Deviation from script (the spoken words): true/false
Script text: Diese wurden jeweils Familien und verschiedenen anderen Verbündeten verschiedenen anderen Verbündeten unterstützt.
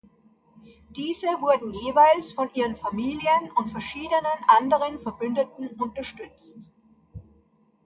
true